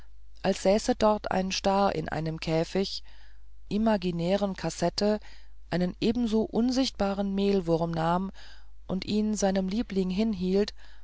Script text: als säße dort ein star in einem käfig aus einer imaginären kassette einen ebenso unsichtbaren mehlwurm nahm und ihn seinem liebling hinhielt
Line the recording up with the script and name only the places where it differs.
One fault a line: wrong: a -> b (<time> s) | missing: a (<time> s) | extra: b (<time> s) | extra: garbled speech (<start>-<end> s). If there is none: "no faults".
missing: aus einer (3.0 s)